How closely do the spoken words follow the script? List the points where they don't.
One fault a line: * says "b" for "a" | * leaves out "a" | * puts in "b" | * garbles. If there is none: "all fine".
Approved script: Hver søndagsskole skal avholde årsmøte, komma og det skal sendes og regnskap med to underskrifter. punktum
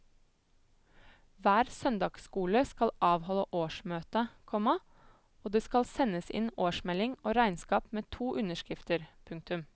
* puts in "inn årsmelding"